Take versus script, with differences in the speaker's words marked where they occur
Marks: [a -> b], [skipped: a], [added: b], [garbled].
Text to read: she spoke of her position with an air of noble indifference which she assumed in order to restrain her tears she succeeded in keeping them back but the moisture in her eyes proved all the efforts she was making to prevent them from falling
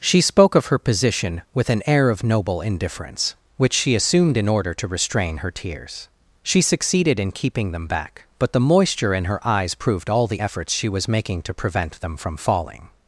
she spoke of her position with an air of noble indifference which she assumed in order to restrain her tears she succeeded in keeping them back but the moisture in her eyes proved all the efforts she was making to prevent them from falling